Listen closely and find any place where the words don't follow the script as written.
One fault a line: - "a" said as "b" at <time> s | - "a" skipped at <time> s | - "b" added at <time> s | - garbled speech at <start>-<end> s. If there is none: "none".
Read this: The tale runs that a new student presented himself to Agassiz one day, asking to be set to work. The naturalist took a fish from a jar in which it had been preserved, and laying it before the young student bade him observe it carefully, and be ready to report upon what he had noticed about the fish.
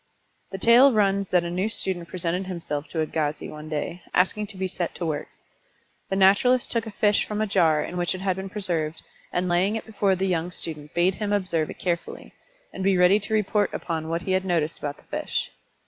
none